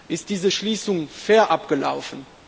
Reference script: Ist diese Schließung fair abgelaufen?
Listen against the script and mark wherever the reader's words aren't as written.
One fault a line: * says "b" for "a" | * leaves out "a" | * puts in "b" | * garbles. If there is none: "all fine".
all fine